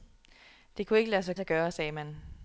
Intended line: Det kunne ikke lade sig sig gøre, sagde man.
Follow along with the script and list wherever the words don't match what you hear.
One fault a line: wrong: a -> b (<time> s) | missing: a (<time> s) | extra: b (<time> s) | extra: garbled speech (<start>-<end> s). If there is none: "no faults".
no faults